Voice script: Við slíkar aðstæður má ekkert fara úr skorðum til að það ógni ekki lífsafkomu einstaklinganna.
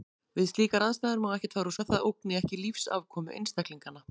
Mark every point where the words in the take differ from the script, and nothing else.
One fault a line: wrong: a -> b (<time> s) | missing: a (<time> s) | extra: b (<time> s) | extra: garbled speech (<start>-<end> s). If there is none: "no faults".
missing: skorðum til (1.8 s)